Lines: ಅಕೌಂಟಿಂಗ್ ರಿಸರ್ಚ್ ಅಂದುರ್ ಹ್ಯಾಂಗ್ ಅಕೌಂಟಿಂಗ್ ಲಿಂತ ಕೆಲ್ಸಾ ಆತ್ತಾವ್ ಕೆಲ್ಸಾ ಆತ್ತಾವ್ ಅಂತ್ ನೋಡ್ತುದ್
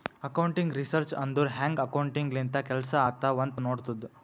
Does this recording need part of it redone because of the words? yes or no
yes